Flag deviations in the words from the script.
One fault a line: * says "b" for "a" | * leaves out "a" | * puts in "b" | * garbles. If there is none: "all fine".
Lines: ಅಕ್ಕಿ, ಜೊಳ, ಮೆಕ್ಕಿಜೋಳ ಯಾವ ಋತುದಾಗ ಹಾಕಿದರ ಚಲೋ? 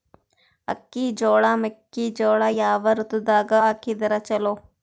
all fine